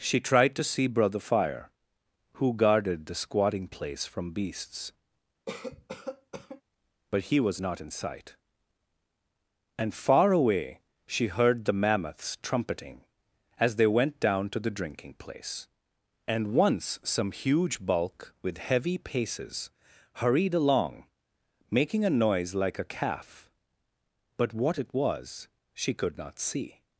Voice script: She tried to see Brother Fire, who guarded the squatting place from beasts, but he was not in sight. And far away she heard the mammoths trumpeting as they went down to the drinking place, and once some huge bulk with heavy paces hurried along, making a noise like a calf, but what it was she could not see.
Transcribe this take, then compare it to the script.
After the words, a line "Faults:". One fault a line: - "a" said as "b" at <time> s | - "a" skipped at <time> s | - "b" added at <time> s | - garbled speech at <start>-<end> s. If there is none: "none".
She tried to see Brother Fire, who guarded the squatting place from beasts, but he was not in sight. And far away she heard the mammoths trumpeting as they went down to the drinking place, and once some huge bulk with heavy paces hurried along, making a noise like a calf, but what it was she could not see.
Faults:
none